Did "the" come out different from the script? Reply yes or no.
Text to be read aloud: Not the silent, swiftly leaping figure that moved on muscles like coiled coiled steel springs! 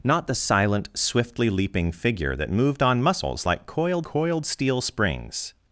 no